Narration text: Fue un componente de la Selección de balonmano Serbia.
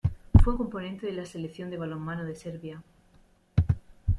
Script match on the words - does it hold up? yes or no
no